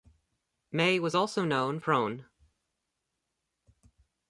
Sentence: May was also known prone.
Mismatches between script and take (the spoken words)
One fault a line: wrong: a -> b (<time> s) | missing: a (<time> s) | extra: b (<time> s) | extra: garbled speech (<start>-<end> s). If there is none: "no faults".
no faults